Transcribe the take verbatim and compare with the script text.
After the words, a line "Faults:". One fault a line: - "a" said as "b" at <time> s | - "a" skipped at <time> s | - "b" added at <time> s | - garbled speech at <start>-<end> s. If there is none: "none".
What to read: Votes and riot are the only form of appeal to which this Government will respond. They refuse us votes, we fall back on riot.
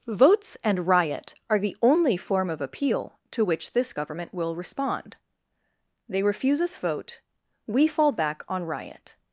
Votes and riot are the only form of appeal to which this Government will respond. They refuse us vote, we fall back on riot.
Faults:
- "votes" said as "vote" at 6.8 s